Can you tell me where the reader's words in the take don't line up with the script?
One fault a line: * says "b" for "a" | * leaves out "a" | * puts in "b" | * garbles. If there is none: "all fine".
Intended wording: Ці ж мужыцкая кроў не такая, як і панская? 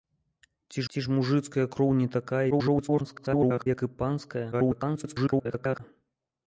* puts in "ці"
* garbles
* garbles